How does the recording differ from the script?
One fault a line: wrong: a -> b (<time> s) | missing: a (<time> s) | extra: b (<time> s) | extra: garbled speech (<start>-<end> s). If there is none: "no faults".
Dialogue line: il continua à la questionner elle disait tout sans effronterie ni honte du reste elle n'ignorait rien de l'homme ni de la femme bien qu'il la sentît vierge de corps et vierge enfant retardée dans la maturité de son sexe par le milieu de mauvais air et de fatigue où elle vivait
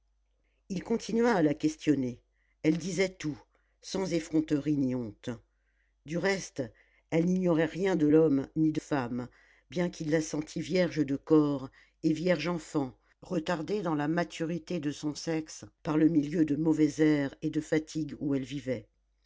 missing: la (8.8 s)